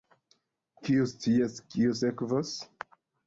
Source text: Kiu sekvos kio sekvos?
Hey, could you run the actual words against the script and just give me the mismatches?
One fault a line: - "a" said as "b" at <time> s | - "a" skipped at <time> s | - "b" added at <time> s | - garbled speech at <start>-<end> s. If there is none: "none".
- "sekvos" said as "scias" at 1.1 s